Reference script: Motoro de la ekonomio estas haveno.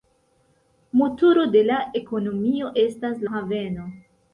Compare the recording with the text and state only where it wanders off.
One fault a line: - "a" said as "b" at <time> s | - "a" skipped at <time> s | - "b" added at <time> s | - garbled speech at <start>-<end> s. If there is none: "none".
none